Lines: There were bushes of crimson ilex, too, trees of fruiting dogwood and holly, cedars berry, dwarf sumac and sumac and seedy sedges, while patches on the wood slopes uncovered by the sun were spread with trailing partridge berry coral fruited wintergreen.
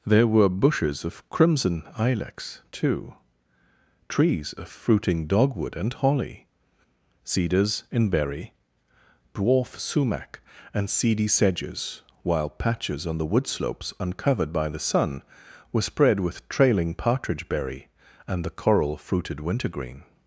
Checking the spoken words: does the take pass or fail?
fail